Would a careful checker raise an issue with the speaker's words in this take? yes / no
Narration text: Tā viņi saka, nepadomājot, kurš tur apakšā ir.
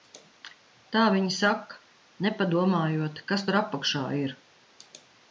yes